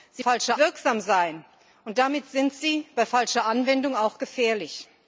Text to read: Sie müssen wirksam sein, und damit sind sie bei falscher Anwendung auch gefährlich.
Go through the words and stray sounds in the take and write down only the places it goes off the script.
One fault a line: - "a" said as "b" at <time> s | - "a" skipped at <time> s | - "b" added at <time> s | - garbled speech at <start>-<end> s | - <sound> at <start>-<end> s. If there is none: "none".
- "müssen" said as "falscher" at 0.2 s